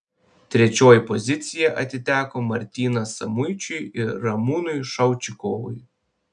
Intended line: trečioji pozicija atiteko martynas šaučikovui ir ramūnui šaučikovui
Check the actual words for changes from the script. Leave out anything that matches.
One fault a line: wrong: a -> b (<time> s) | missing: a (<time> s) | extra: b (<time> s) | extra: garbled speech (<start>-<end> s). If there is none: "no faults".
wrong: šaučikovui -> samuičiui (3.2 s)